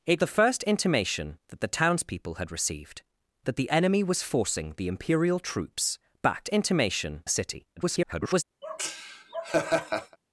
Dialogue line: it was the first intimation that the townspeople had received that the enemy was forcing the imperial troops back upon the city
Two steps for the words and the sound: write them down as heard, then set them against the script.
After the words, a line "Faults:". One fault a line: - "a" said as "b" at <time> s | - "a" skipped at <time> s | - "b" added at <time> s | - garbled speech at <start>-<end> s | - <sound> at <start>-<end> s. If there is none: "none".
it the first intimation that the townspeople had received that the enemy was forcing the imperial troops back intimation the city [garbled]
Faults:
- "was" skipped at 0.2 s
- "upon" said as "intimation" at 6.5 s
- garbled speech at 7.8-8.4 s
- laugh at 8.6-10.2 s